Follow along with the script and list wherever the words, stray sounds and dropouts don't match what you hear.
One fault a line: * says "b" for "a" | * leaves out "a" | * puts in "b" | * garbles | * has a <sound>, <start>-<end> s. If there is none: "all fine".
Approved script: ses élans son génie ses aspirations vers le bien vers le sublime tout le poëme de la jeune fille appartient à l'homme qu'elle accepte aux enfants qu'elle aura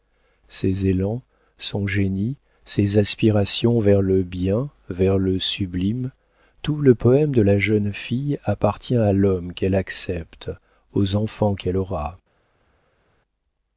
all fine